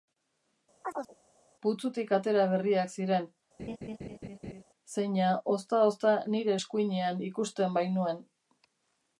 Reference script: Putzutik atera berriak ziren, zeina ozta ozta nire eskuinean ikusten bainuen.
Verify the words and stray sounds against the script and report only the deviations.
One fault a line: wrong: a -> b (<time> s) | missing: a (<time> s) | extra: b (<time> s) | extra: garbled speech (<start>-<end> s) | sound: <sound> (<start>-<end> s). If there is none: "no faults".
sound: chirp (0.8-1.2 s)
sound: laugh (3.6-4.6 s)